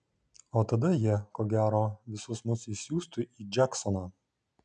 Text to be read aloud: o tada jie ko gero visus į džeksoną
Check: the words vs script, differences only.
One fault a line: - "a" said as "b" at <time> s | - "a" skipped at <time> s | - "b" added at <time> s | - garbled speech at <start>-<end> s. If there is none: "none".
- "mus išsiųstų" added at 2.5 s